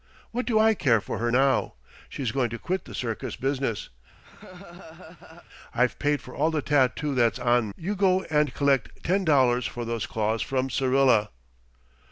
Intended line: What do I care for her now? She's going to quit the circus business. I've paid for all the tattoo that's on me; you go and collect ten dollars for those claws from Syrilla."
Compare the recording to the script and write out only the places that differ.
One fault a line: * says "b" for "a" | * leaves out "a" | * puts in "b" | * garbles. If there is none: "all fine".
* leaves out "me"